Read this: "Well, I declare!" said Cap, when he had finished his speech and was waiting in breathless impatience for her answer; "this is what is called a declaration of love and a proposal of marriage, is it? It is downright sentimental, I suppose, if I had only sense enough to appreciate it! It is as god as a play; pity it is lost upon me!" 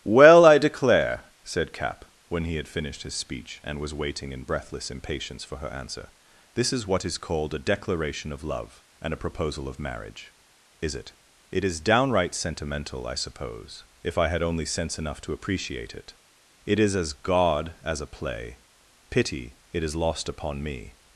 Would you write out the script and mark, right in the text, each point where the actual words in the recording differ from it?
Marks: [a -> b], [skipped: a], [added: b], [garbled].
"Well, I declare!" said Cap, when he had finished his speech and was waiting in breathless impatience for her answer; "this is what is called a declaration of love and a proposal of marriage, is it? It is downright sentimental, I suppose, if I had only sense enough to appreciate it! It is as god as a play; pity it is lost upon me!"